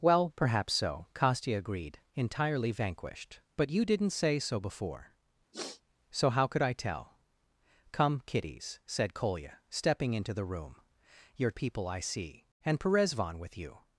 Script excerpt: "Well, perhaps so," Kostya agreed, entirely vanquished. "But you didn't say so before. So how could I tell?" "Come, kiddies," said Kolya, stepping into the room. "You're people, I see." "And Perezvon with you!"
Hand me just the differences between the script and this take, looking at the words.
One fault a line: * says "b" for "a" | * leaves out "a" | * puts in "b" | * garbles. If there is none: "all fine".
all fine